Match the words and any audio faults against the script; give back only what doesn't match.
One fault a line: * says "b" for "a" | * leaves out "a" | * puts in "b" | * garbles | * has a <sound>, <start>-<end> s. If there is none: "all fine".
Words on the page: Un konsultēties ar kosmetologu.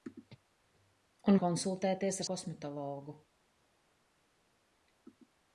all fine